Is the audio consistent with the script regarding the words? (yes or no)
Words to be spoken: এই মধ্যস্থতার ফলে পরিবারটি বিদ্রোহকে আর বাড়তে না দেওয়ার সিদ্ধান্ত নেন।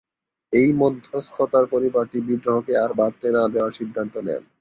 no